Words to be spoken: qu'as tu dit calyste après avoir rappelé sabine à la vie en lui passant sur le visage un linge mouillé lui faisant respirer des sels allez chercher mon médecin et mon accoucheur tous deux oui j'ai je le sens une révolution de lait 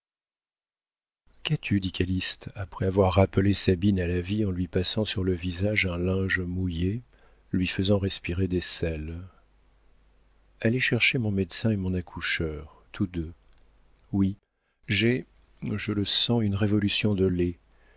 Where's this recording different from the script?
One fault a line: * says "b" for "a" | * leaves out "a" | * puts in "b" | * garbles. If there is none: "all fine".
all fine